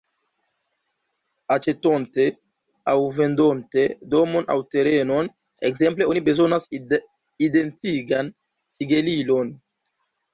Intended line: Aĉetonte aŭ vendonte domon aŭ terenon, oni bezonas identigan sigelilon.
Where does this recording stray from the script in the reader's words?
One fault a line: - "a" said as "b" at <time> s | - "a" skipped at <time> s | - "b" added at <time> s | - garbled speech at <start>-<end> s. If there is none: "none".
- "ekzemple" added at 5.7 s